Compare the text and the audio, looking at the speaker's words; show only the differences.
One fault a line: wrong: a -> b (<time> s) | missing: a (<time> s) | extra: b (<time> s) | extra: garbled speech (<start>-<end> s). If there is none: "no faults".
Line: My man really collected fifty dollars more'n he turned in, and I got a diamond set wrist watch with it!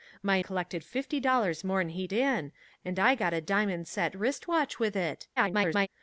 missing: man really (0.4 s)
missing: turned (2.1 s)
extra: garbled speech (5.4-5.9 s)